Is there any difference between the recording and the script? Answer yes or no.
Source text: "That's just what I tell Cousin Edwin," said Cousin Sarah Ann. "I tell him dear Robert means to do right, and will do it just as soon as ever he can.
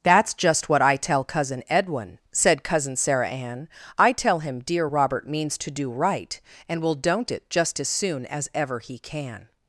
yes